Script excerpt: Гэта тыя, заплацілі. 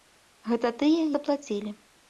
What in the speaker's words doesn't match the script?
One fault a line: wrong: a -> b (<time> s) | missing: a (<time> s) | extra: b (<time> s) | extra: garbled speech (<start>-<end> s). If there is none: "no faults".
no faults